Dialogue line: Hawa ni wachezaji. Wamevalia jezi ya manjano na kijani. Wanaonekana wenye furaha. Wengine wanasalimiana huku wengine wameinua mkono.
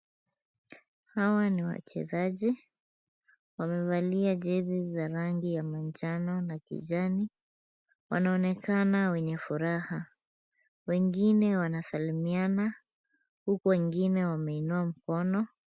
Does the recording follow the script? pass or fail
fail